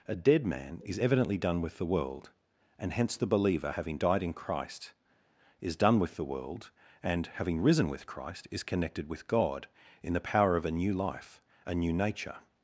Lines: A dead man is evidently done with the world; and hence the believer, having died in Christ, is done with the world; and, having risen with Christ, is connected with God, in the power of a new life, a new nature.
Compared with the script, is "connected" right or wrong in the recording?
right